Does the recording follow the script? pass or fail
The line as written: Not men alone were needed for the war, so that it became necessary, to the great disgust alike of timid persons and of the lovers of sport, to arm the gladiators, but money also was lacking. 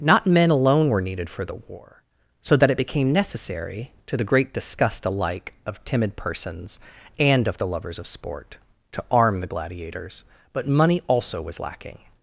pass